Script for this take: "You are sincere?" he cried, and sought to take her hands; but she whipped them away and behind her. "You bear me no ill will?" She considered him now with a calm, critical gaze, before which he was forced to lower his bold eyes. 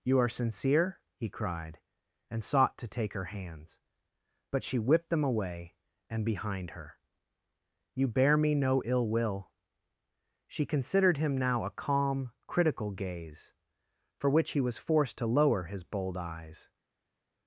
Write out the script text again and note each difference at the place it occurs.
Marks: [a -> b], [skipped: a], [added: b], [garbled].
"You are sincere?" he cried, and sought to take her hands; but she whipped them away and behind her. "You bear me no ill will?" She considered him now [skipped: with] a calm, critical gaze, [before -> for] which he was forced to lower his bold eyes.